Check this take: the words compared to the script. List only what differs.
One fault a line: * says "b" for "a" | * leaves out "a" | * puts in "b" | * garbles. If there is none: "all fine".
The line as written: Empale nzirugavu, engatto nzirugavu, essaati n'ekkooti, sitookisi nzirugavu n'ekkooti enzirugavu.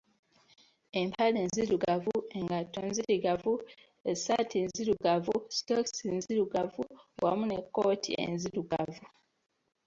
* says "nzirugavu" for "n'ekkooti"
* puts in "wamu"